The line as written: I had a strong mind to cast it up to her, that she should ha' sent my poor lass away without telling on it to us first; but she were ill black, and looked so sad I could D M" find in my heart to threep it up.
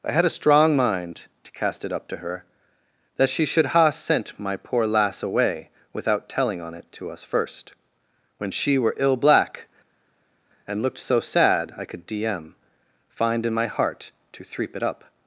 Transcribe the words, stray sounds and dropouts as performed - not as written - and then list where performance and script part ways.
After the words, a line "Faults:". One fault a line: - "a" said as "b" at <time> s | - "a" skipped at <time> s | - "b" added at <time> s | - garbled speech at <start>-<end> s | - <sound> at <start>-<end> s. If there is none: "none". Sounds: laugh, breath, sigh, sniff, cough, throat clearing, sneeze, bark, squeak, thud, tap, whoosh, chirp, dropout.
I had a strong mind to cast it up to her, that she should ha' sent my poor lass away without telling on it to us first; when she were ill black, and looked so sad I could D M" find in my heart to threep it up.
Faults:
- "but" said as "when" at 8.4 s